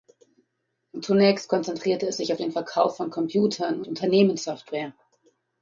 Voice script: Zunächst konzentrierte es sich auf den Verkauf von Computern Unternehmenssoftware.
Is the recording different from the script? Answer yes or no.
no